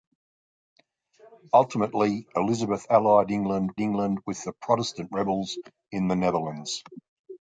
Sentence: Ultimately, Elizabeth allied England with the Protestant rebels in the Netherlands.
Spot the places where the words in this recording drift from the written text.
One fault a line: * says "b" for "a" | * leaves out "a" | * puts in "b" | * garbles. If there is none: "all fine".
* puts in "England"